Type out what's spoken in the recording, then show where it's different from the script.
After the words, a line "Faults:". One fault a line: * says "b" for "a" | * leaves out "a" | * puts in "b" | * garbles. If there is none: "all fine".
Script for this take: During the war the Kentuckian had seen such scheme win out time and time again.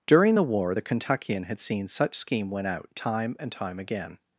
During the war the Kentuckian had seen such scheme win out time and time again.
Faults:
all fine